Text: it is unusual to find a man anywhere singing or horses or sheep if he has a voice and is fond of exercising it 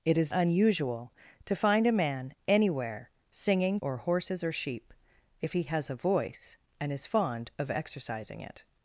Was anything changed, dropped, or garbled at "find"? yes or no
no